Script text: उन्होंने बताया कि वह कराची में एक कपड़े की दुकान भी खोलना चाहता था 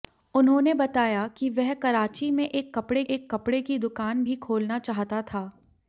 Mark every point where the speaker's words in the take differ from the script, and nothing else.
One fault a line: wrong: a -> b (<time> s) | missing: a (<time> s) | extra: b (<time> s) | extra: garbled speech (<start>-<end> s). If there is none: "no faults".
extra: एक कपड़े (3.0 s)